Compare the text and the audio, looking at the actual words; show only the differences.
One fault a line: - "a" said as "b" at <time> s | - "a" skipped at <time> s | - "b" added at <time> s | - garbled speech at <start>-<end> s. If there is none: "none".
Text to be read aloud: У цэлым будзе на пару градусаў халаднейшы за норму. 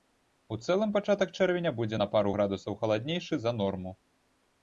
- "пачатак чэрвеня" added at 0.9 s